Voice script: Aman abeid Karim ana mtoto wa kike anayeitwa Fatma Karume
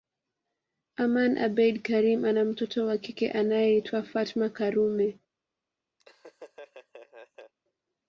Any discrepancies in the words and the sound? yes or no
yes